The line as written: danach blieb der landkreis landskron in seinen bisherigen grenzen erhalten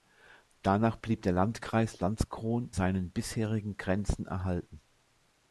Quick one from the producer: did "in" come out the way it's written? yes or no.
no